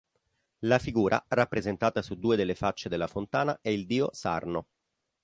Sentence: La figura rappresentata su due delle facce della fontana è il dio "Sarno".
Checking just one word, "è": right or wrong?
right